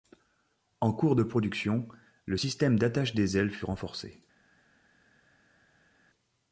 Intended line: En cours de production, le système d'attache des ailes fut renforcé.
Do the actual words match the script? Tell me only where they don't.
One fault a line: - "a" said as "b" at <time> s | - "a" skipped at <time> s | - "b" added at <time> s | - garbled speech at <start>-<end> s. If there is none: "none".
none